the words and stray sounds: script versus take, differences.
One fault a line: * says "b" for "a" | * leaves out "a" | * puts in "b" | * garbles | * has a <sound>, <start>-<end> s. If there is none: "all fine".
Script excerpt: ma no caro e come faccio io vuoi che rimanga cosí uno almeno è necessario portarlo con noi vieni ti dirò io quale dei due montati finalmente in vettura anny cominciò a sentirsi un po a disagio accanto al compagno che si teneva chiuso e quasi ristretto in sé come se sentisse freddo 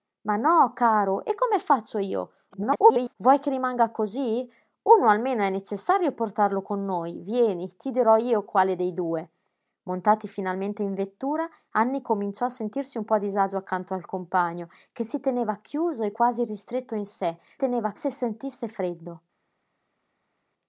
* garbles
* says "teneva" for "come"